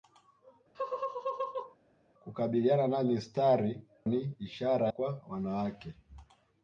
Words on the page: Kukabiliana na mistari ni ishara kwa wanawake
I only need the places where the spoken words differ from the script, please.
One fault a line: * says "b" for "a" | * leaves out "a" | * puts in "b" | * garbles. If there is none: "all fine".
all fine